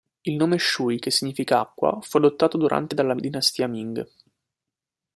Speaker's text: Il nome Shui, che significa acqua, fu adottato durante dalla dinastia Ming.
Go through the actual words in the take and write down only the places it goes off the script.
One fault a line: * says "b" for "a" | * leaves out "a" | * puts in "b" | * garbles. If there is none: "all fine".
all fine